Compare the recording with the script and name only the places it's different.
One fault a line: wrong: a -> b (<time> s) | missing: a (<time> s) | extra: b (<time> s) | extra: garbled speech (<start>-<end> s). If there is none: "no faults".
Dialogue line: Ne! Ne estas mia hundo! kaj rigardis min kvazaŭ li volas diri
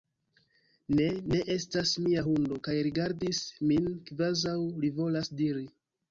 no faults